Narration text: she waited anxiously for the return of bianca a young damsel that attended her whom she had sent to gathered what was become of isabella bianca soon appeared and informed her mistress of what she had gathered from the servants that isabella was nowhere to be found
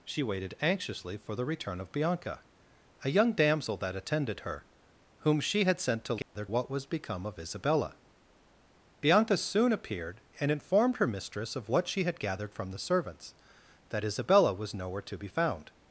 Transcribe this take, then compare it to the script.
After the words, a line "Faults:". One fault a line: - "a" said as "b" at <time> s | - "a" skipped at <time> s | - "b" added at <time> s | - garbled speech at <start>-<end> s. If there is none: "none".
she waited anxiously for the return of bianca a young damsel that attended her whom she had sent to gathered what was become of isabella bianca soon appeared and informed her mistress of what she had gathered from the servants that isabella was nowhere to be found
Faults:
none